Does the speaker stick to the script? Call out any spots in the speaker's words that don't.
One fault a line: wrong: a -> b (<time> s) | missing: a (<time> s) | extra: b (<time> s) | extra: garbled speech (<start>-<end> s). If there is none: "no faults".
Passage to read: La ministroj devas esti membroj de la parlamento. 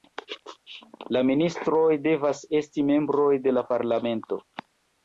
no faults